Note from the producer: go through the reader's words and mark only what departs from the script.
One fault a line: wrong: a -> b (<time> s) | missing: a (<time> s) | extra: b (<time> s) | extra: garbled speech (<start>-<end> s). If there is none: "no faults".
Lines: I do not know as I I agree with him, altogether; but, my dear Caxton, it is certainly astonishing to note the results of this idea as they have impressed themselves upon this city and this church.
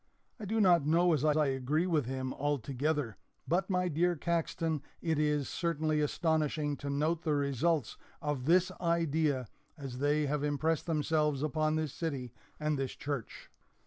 no faults